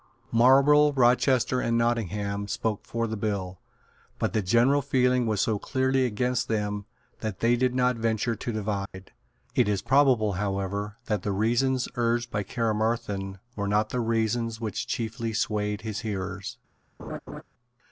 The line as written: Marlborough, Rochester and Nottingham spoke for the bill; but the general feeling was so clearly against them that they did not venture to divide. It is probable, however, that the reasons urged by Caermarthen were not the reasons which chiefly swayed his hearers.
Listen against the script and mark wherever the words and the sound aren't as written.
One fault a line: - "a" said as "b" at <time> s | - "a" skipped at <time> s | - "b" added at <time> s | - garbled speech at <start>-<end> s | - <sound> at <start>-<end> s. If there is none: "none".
- dropout at 8.9-8.9 s
- laugh at 17.0-17.4 s